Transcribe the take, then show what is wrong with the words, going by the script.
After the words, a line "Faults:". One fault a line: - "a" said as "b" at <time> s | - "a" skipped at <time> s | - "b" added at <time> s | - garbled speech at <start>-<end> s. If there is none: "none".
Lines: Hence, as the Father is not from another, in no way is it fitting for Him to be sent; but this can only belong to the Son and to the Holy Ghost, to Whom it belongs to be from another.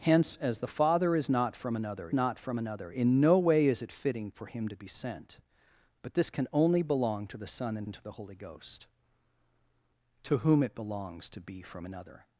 Hence, as the Father is not from another not from another, in no way is it fitting for Him to be sent; but this can only belong to the Son and and to the Holy Ghost, to Whom it belongs to be from another.
Faults:
- "not from another" added at 2.1 s
- "and" added at 7.8 s